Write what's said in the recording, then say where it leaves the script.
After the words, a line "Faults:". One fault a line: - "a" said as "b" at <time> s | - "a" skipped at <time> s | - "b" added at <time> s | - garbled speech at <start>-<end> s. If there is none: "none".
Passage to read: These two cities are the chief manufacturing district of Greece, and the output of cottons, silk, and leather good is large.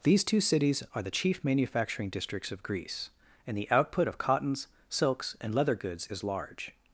These two cities are the chief manufacturing districts of Greece, and the output of cottons, silks, and leather goods is large.
Faults:
- "district" said as "districts" at 2.1 s
- "silk" said as "silks" at 4.9 s
- "good" said as "goods" at 5.8 s